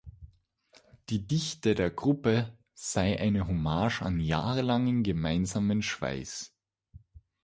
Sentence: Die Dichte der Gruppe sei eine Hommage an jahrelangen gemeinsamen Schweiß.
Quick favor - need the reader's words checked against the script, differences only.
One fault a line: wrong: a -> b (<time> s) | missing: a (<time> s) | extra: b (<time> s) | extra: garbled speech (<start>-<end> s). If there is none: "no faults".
no faults